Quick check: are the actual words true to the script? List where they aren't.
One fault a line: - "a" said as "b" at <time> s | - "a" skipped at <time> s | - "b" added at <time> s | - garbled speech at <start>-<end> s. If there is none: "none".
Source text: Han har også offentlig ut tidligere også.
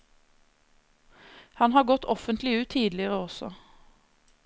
- "også" said as "gått" at 1.8 s